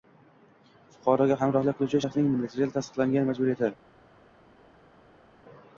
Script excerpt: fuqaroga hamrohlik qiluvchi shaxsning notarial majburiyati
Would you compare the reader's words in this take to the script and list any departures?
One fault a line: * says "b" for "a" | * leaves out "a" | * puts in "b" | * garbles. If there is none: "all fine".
* puts in "tasdiqlangan"